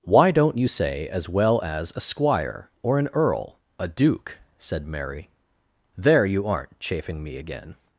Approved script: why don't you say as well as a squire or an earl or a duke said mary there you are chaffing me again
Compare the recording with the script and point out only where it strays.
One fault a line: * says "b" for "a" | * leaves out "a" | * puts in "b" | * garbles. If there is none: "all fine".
* leaves out "or"
* says "aren't" for "are"